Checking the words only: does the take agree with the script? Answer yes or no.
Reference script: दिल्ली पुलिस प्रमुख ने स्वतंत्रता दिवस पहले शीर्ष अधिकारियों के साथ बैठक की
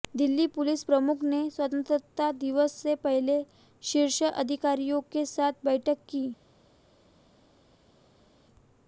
no